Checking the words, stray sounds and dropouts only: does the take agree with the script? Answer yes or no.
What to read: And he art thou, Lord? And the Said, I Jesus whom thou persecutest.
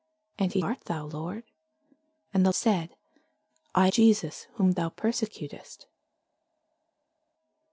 yes